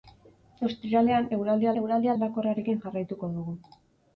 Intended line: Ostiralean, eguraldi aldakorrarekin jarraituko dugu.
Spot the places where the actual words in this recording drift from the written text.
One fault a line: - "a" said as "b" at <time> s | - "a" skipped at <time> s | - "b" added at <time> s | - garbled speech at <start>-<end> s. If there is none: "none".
- "eguraldi" added at 1.8 s